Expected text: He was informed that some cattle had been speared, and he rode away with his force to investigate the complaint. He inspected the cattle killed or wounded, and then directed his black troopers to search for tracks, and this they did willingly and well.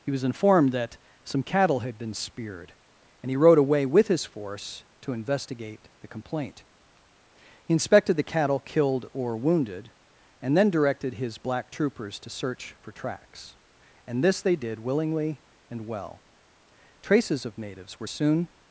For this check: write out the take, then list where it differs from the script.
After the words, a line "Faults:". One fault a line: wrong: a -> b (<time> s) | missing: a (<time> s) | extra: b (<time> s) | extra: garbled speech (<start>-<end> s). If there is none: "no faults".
He was informed that some cattle had been speared, and he rode away with his force to investigate the complaint. He inspected the cattle killed or wounded, and then directed his black troopers to search for tracks, and this they did willingly and well. Traces of natives were soon
Faults:
extra: Traces of natives were soon (17.0 s)